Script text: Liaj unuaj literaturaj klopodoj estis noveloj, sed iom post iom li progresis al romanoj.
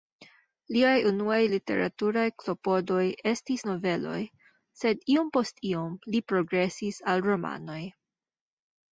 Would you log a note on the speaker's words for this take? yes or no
no